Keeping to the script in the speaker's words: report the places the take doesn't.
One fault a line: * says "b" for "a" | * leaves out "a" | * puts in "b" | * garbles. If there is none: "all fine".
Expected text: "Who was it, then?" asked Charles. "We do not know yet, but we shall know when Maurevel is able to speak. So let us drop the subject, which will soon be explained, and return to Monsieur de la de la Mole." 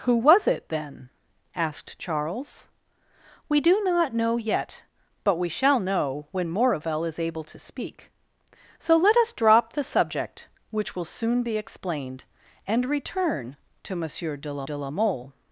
all fine